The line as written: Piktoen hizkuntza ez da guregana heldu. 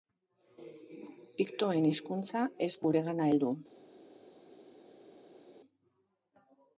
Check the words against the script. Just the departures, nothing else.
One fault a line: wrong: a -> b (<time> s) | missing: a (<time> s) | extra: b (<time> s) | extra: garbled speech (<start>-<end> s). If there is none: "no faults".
missing: da (2.7 s)